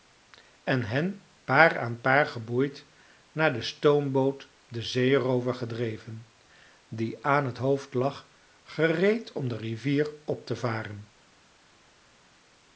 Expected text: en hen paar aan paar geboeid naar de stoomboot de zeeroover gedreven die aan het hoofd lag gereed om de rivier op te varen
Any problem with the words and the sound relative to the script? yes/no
no